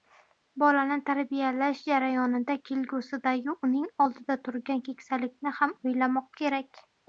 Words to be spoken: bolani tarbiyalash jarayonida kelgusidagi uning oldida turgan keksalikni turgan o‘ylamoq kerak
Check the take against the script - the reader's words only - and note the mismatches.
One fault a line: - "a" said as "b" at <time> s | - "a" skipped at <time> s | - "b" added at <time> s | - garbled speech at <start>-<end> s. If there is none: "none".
- "turgan" said as "ham" at 5.6 s